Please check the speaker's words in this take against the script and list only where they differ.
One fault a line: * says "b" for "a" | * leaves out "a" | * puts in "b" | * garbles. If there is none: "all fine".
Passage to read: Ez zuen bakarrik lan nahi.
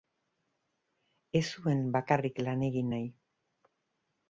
* puts in "egin"